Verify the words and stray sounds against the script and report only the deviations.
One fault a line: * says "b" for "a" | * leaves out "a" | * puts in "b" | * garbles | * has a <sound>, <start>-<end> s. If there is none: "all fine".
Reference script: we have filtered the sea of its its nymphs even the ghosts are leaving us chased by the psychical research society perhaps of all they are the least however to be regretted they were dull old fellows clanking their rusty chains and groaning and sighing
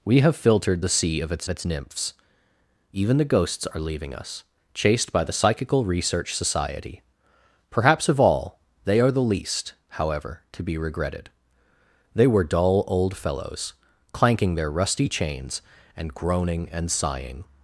all fine